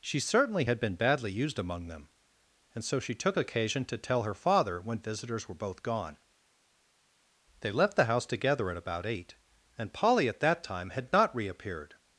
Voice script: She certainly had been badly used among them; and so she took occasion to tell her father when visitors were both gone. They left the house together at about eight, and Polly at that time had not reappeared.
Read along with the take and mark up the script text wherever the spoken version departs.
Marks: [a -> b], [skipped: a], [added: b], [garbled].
She certainly had been badly used among them; and so she took occasion to tell her father when visitors were both gone. They left the house together at about eight, and Polly at that time had not reappeared.